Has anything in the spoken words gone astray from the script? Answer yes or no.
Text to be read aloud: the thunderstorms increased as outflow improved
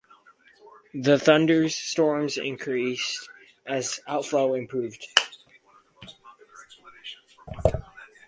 no